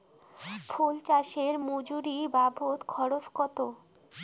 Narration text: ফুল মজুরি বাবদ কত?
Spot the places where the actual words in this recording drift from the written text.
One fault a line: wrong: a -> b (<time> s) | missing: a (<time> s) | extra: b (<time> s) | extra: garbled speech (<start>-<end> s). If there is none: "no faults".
extra: চাষে (1.1 s)
extra: খরচ (2.9 s)